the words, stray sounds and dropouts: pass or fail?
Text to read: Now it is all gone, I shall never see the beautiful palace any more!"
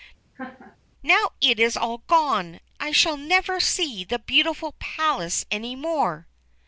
fail